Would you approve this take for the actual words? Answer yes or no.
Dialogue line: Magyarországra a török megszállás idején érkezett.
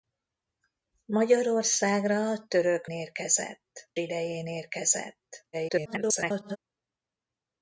no